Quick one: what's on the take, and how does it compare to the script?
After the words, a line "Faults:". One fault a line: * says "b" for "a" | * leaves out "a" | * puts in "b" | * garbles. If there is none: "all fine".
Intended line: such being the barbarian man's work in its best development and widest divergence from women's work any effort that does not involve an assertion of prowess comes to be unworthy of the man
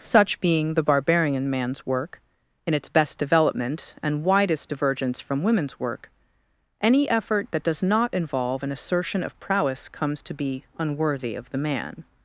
such being the barbarian man's work in its best development and widest divergence from women's work any effort that does not involve an assertion of prowess comes to be unworthy of the man
Faults:
all fine